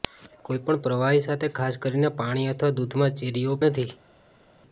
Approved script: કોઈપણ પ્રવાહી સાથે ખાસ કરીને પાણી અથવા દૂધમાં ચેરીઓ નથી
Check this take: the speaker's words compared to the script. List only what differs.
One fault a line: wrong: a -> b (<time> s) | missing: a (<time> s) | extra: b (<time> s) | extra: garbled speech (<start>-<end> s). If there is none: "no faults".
no faults